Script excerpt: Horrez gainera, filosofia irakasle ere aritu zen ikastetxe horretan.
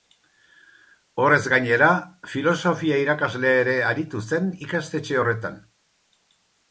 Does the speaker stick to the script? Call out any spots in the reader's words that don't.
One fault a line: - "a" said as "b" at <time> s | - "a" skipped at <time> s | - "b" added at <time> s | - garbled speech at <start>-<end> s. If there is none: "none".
none